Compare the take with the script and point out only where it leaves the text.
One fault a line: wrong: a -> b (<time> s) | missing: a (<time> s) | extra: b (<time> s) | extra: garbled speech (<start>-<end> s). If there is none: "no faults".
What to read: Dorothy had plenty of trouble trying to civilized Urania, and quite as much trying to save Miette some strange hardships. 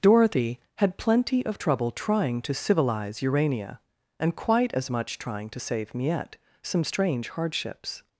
wrong: civilized -> civilize (2.5 s)